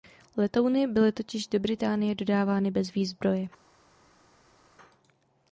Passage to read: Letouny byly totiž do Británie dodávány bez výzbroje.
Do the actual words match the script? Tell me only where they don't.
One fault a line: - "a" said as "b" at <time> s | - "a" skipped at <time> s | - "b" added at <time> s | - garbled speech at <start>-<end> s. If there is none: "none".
none